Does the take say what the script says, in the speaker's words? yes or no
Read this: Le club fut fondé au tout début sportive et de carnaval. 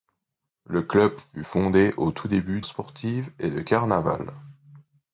yes